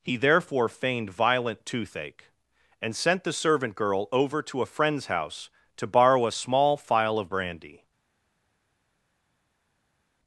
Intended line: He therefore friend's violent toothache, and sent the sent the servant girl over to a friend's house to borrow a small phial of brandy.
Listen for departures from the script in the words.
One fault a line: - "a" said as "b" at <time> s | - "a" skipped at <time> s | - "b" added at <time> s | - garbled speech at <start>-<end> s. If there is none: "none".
- "friend's" said as "feigned" at 0.7 s
- "sent the" skipped at 3.3 s